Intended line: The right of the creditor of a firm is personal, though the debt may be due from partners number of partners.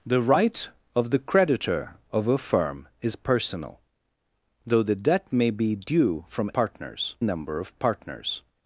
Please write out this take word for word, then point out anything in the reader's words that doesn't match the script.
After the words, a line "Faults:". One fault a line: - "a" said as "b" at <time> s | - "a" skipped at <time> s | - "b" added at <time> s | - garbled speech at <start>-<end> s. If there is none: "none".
The right of the creditor of a firm is personal, though the debt may be due from partners number of partners.
Faults:
none